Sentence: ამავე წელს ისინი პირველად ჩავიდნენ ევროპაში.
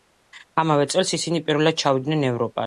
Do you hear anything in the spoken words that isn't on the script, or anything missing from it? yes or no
no